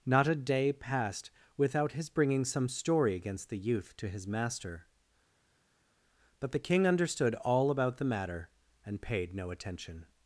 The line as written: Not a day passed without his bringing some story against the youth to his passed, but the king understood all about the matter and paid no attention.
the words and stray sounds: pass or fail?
fail